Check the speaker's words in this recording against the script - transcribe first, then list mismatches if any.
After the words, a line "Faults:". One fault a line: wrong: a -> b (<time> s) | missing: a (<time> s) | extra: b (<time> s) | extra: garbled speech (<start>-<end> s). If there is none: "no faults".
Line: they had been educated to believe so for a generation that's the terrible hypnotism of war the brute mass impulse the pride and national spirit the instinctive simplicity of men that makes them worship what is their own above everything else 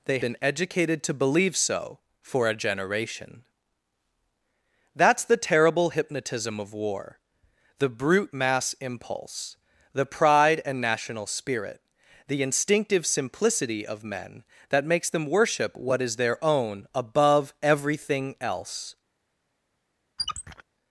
they been educated to believe so for a generation that's the terrible hypnotism of war the brute mass impulse the pride and national spirit the instinctive simplicity of men that makes them worship what is their own above everything else
Faults:
missing: had (0.2 s)